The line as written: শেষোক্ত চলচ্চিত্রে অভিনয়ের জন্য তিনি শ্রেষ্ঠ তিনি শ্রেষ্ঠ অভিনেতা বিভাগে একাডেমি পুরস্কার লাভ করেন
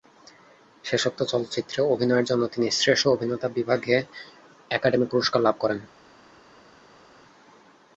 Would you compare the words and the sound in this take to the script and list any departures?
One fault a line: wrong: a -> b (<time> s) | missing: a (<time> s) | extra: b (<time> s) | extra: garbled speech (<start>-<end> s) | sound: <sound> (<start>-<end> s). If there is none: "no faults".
missing: তিনি শ্রেষ্ঠ (3.1 s)